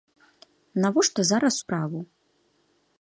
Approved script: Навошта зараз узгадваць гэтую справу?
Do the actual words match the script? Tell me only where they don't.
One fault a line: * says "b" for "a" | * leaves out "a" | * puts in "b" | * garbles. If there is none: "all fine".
* leaves out "узгадваць гэтую"